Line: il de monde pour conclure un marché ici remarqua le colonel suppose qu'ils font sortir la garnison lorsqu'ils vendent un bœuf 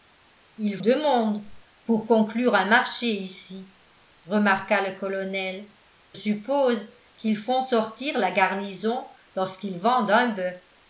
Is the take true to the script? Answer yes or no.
yes